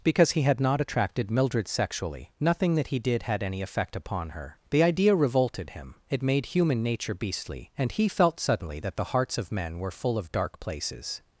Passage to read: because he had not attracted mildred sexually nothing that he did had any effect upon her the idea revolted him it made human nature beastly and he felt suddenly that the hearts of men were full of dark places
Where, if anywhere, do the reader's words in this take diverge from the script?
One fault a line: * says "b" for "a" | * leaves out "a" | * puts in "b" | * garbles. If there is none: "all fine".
all fine